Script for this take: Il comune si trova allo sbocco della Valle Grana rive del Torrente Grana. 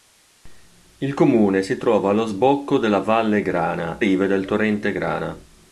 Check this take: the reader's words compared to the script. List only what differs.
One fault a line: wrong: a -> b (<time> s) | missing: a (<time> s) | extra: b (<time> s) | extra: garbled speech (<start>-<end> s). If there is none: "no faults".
no faults